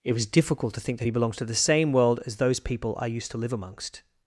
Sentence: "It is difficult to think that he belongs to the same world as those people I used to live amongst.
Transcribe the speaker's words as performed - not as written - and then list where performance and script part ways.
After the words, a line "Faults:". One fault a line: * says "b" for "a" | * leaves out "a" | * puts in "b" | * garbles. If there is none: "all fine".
"It was difficult to think that he belongs to the same world as those people I used to live amongst.
Faults:
* says "was" for "is"